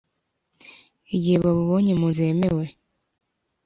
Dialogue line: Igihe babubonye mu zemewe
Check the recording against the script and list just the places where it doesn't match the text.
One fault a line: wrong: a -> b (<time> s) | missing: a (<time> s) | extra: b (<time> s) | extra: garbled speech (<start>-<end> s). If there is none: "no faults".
no faults